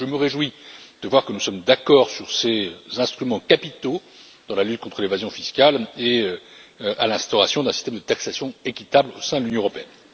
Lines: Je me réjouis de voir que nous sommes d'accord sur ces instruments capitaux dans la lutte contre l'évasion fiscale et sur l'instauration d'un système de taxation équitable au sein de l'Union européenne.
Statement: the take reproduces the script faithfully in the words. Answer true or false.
true